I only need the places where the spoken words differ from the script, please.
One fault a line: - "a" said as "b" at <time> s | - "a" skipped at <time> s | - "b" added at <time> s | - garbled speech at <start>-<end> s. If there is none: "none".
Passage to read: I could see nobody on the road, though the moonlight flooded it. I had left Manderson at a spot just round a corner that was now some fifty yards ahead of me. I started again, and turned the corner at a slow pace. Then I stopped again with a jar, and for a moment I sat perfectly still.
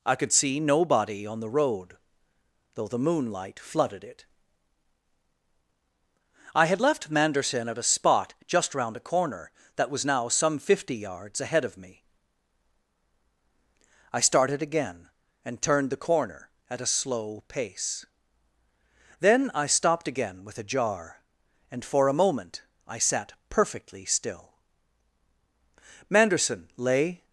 - "Manderson lay" added at 26.1 s